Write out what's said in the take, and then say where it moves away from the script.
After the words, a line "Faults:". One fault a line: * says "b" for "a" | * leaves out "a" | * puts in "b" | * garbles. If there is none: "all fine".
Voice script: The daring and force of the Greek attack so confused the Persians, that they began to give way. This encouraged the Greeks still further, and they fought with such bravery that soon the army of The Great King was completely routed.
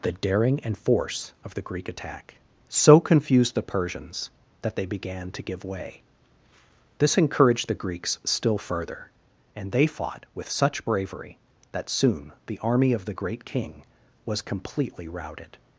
The daring and force of the Greek attack so confused the Persians, that they began to give way. This encouraged the Greeks still further, and they fought with such bravery that soon the army of The Great King was completely routed.
Faults:
all fine